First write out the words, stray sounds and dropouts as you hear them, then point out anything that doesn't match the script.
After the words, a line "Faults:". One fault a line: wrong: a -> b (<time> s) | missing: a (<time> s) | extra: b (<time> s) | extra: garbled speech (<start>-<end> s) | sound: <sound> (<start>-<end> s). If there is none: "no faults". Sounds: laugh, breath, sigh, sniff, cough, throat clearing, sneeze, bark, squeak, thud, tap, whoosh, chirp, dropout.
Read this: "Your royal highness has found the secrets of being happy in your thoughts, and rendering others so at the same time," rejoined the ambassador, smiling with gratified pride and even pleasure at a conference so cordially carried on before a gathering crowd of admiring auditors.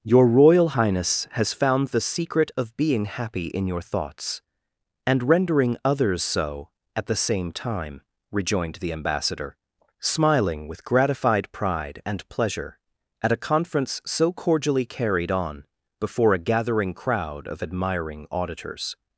"Your royal highness has found the secret of being happy in your thoughts, and rendering others so at the same time," rejoined the ambassador, smiling with gratified pride and pleasure at a conference so cordially carried on before a gathering crowd of admiring auditors.
Faults:
wrong: secrets -> secret (2.0 s)
missing: even (12.3 s)